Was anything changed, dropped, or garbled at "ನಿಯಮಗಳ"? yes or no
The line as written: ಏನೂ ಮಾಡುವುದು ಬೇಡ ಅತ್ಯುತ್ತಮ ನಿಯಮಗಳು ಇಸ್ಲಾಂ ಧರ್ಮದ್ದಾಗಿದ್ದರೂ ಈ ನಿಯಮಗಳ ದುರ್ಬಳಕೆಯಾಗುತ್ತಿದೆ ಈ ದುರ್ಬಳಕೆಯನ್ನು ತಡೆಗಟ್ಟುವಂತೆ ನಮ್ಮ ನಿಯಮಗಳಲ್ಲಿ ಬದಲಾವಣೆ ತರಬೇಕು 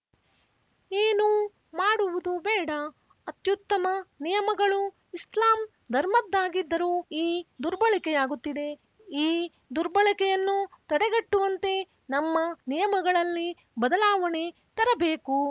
yes